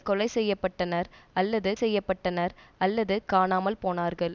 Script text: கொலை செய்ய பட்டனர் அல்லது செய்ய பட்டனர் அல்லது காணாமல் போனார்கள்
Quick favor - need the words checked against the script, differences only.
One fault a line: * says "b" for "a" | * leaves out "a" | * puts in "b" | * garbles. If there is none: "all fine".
all fine